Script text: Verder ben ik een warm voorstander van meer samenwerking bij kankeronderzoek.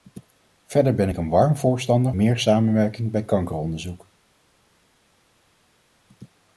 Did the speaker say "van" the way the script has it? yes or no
no